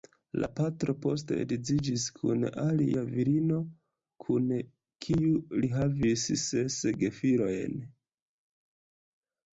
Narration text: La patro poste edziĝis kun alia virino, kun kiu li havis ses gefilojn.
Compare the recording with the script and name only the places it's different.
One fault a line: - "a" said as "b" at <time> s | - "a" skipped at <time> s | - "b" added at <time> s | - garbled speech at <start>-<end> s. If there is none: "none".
none